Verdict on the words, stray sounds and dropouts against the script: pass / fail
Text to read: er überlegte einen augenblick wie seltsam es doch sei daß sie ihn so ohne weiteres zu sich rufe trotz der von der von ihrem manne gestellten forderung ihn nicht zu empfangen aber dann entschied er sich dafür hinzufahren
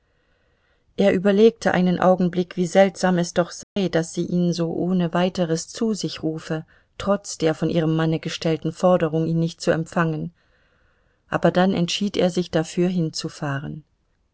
fail